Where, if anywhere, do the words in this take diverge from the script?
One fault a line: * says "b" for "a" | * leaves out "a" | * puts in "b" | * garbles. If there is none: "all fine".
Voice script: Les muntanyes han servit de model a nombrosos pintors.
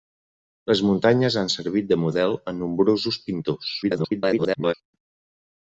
* garbles